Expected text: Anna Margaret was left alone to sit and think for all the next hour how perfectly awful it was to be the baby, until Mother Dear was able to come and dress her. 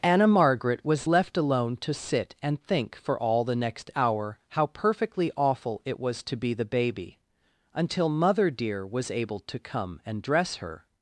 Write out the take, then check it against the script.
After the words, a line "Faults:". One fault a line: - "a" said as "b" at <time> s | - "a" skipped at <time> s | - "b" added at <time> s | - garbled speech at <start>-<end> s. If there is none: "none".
Anna Margaret was left alone to sit and think for all the next hour how perfectly awful it was to be the baby, until Mother Dear was able to come and dress her.
Faults:
none